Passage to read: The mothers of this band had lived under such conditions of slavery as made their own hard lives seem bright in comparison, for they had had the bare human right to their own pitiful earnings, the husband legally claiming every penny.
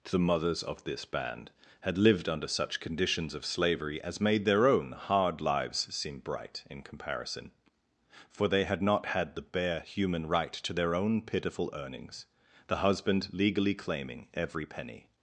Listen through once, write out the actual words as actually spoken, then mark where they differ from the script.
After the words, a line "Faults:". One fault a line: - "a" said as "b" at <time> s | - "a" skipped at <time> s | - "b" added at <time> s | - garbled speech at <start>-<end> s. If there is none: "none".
The mothers of this band had lived under such conditions of slavery as made their own hard lives seem bright in comparison, for they had not had the bare human right to their own pitiful earnings, the husband legally claiming every penny.
Faults:
- "not" added at 8.8 s